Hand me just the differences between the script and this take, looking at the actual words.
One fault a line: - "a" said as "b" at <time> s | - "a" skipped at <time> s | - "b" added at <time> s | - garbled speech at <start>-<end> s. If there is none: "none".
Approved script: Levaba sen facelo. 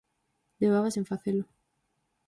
none